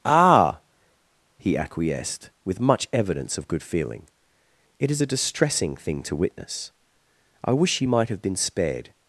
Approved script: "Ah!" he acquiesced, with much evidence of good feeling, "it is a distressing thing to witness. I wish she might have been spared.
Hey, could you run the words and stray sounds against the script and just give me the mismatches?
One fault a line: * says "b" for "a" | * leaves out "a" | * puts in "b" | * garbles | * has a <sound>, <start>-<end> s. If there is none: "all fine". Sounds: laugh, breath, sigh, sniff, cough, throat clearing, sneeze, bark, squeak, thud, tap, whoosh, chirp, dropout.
all fine